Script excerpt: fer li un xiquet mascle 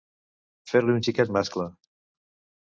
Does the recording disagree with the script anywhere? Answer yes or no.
no